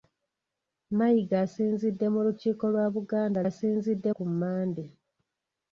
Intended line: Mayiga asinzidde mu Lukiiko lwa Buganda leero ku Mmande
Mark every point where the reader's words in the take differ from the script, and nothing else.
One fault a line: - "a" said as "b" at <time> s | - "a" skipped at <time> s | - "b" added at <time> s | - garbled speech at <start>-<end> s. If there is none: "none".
- "leero" said as "asinzidde" at 3.5 s